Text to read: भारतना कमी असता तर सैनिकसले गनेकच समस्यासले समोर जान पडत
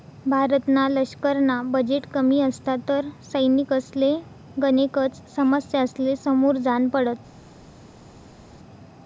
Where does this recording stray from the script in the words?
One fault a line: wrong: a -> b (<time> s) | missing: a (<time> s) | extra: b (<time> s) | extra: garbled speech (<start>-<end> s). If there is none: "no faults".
extra: लशकरना बजेट (0.9 s)